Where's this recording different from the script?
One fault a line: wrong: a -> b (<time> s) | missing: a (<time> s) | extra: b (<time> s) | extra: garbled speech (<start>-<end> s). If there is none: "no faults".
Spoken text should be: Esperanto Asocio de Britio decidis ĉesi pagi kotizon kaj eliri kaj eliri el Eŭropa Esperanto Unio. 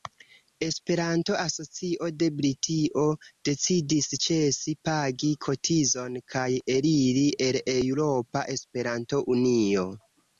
missing: kaj eliri (7.3 s)